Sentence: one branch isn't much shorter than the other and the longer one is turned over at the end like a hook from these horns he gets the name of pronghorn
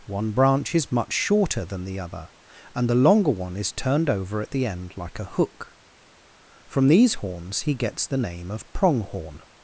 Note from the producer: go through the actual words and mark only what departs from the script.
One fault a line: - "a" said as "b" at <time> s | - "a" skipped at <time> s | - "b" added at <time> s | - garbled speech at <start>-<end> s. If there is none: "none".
- "isn't" said as "is" at 0.7 s